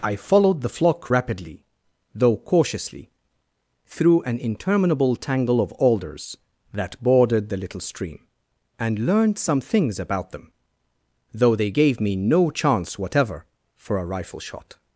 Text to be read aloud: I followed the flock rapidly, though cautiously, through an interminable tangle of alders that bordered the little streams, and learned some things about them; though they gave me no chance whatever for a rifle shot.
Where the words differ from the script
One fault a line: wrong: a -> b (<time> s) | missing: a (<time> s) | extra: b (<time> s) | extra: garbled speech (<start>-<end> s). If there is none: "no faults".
wrong: streams -> stream (7.8 s)